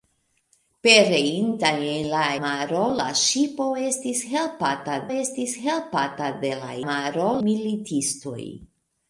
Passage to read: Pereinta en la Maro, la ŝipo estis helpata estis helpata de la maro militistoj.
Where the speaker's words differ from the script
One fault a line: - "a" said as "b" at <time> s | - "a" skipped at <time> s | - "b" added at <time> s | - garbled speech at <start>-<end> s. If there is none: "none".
none